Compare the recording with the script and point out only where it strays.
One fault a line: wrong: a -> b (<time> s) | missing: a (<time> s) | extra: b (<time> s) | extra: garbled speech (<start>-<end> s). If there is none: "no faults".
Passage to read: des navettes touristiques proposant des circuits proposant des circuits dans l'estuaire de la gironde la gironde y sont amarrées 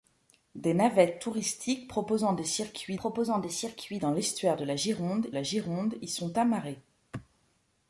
no faults